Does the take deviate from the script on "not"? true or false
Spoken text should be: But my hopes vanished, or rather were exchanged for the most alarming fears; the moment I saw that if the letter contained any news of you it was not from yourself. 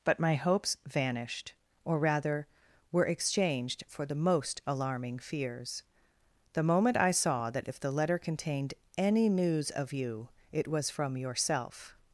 true